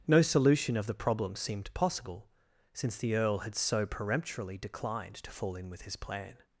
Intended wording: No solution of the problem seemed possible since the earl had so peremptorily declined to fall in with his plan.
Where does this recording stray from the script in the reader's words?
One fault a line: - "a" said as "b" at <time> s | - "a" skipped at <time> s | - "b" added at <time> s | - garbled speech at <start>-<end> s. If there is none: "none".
none